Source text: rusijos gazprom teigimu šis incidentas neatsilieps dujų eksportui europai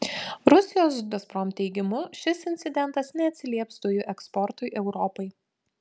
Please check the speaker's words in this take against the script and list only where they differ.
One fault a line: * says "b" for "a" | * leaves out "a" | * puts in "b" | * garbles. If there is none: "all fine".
all fine